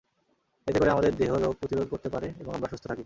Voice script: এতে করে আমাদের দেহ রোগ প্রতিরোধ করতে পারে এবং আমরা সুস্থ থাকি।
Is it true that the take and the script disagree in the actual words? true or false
false